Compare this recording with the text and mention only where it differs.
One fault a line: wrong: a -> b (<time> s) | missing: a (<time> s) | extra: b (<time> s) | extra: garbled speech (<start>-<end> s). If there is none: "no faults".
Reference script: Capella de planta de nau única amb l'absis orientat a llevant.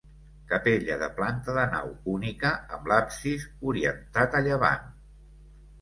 no faults